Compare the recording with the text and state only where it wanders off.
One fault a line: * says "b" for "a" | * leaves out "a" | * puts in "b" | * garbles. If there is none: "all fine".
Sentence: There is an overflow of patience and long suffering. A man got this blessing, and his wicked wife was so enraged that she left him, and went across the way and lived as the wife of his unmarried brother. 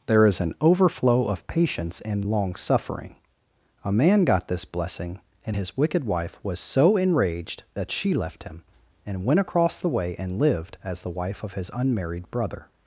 all fine